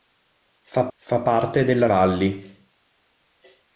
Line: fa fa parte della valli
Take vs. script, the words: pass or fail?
pass